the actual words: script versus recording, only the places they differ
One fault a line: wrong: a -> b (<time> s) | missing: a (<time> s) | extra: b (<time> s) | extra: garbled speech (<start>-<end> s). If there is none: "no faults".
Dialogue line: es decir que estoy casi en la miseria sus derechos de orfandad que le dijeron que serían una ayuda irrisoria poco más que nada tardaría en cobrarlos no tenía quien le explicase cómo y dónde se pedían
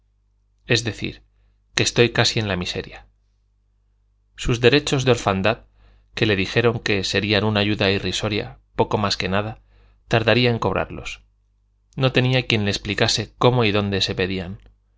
no faults